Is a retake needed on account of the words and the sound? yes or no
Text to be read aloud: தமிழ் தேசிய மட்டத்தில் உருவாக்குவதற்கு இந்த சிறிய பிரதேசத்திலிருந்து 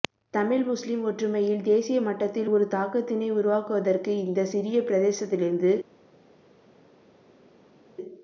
yes